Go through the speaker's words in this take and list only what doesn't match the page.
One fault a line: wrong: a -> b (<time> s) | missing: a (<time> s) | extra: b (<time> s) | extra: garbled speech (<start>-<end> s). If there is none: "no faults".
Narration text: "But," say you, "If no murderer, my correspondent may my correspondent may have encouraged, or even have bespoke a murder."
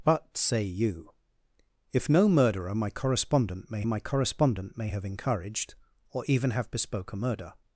no faults